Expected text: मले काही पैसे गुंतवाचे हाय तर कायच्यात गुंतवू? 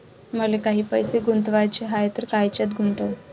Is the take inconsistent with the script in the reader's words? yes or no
no